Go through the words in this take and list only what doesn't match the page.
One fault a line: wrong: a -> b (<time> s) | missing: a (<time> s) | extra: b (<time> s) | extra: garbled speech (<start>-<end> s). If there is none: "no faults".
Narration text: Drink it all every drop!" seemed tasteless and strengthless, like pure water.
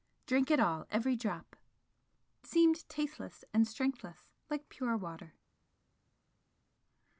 no faults